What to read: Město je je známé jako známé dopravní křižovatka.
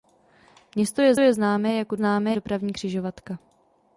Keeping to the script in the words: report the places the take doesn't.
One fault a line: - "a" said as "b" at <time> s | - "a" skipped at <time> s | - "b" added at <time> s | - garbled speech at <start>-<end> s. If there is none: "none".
none